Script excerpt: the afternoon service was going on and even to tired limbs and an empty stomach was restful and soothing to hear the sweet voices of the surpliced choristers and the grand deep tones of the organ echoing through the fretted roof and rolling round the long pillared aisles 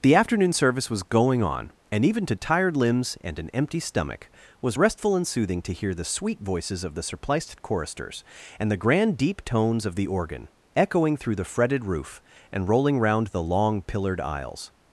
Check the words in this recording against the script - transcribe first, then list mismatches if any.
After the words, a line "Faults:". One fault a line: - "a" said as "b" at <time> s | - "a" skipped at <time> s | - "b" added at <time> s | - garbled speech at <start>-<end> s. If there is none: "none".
the afternoon service was going on and even to tired limbs and an empty stomach was restful and soothing to hear the sweet voices of the surpliced choristers and the grand deep tones of the organ echoing through the fretted roof and rolling round the long pillared aisles
Faults:
none